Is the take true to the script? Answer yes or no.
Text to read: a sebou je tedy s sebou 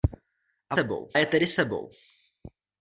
yes